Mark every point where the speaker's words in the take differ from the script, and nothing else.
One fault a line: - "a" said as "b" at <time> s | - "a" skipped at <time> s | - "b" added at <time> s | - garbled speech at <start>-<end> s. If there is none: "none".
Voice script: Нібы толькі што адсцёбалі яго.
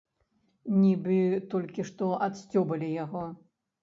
none